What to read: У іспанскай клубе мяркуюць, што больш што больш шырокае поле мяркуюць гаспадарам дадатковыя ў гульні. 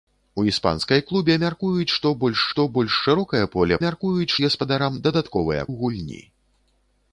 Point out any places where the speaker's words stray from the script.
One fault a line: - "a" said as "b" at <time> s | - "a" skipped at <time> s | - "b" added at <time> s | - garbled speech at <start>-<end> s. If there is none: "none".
none